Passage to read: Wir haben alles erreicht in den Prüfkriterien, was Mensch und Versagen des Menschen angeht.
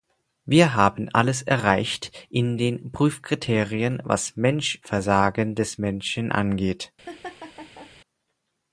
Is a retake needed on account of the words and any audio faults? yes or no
yes